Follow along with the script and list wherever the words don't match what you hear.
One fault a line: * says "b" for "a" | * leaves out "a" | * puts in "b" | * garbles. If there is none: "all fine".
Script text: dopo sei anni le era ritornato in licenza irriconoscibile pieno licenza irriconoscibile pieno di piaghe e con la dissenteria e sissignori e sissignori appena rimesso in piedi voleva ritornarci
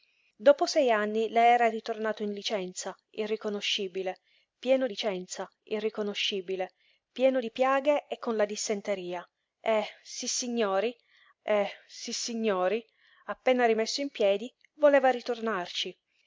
all fine